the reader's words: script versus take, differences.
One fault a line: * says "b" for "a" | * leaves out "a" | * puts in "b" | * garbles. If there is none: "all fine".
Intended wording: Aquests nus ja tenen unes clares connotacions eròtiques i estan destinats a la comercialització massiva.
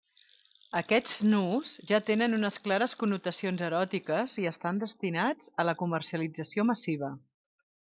all fine